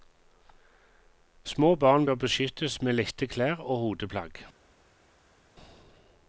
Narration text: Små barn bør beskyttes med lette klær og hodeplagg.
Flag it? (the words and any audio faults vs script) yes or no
no